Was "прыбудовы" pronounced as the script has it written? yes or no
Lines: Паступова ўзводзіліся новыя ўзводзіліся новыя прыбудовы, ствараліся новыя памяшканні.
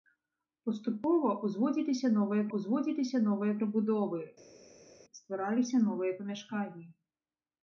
yes